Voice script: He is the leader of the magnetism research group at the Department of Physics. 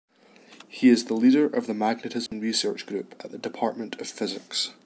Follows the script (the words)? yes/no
yes